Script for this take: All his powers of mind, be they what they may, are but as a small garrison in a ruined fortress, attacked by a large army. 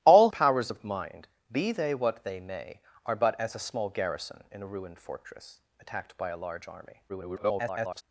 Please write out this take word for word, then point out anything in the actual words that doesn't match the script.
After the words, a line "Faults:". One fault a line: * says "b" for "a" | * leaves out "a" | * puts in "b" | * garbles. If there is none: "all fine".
All powers of mind, be they what they may, are but as a small garrison in a ruined fortress, attacked by a large army. [garbled]
Faults:
* leaves out "his"
* garbles